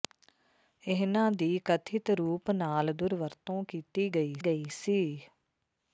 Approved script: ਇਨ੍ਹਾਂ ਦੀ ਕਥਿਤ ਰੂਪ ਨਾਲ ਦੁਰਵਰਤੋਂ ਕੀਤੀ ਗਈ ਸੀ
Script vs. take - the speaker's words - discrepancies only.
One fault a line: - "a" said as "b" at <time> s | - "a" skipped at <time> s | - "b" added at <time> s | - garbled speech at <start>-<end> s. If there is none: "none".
- "ਗਈ" added at 4.4 s